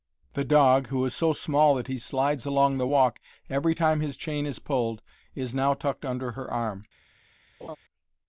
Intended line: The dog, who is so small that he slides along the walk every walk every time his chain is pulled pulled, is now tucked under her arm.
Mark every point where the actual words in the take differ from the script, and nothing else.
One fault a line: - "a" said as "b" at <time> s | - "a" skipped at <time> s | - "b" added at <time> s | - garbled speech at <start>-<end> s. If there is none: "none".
- "walk every" skipped at 3.7 s
- "pulled" skipped at 5.0 s